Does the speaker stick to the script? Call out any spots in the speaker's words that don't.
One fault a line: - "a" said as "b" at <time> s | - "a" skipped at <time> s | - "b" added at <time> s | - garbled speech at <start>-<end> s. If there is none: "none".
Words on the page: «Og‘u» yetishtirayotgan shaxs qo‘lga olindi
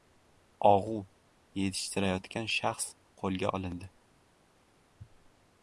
none